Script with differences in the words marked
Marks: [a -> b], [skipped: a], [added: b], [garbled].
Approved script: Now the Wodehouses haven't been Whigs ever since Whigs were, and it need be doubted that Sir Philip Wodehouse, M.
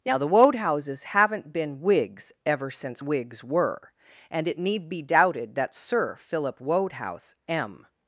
Now the Wodehouses haven't been Whigs ever since Whigs were, and it need be doubted that Sir Philip Wodehouse, M.